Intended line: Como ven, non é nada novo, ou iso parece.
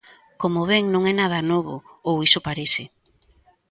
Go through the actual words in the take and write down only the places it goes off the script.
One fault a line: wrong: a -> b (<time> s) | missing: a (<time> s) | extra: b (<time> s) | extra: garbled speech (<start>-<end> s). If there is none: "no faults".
no faults